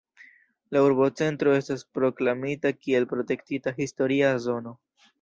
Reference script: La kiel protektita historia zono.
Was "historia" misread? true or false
false